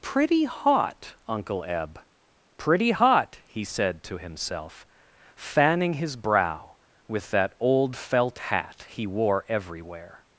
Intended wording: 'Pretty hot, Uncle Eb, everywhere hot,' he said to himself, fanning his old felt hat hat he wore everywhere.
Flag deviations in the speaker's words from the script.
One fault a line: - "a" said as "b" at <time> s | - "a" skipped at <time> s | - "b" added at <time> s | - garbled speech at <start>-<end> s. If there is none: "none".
- "everywhere" said as "pretty" at 2.6 s
- "brow with that" added at 6.2 s
- "hat" skipped at 8.9 s